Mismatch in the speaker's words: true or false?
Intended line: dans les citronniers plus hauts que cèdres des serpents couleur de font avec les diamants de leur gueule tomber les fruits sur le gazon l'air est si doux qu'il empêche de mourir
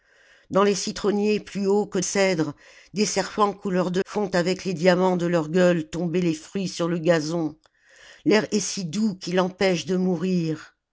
false